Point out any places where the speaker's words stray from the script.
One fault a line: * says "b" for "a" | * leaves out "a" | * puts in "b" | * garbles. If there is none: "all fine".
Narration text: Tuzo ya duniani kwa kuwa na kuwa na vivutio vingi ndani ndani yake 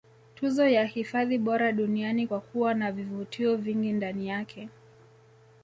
* puts in "hifadhi bora"
* leaves out "kuwa na"
* leaves out "ndani"